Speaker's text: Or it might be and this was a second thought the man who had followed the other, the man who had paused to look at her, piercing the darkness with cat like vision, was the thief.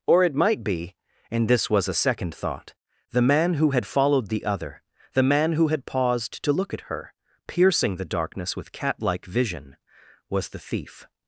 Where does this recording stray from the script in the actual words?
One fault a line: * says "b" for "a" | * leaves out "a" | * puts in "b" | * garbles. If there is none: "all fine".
all fine